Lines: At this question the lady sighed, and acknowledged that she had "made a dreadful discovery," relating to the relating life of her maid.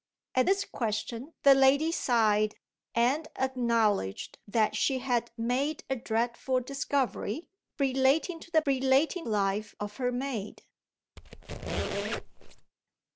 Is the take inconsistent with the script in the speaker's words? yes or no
no